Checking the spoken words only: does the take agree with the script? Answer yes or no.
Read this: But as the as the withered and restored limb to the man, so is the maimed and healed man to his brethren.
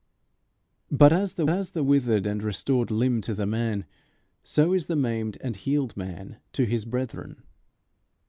yes